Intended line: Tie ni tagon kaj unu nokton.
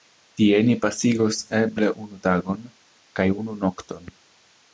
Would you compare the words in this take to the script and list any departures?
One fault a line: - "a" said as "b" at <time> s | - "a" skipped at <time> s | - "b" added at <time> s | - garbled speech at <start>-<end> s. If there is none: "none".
- "pasigos eble unu" added at 0.8 s